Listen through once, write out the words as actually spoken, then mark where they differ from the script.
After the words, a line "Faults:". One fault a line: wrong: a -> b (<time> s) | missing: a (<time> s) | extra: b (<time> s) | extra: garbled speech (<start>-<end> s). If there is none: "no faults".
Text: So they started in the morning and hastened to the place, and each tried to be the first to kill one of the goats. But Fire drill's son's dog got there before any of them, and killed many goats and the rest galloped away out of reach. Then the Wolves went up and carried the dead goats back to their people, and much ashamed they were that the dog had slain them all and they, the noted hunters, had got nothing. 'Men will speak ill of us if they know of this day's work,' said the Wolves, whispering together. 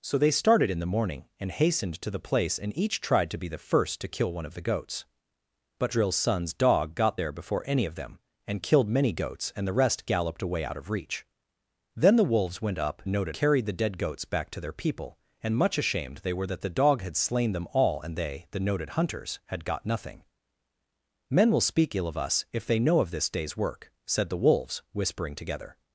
So they started in the morning and hastened to the place, and each tried to be the first to kill one of the goats. But Drill's son's dog got there before any of them, and killed many goats and the rest galloped away out of reach. Then the Wolves went up noted carried the dead goats back to their people, and much ashamed they were that the dog had slain them all and they, the noted hunters, had got nothing. 'Men will speak ill of us if they know of this day's work,' said the Wolves, whispering together.
Faults:
missing: Fire (5.9 s)
wrong: and -> noted (13.1 s)